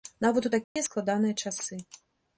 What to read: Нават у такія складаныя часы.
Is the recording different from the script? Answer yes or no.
no